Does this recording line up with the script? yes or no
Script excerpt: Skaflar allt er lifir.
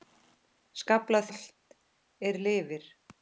yes